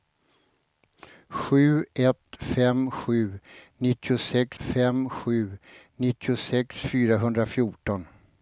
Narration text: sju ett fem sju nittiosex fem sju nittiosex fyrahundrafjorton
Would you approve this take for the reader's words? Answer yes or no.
yes